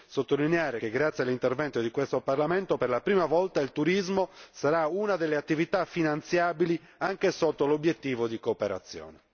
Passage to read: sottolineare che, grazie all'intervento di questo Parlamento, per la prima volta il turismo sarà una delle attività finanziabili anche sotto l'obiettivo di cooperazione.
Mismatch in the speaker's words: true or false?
false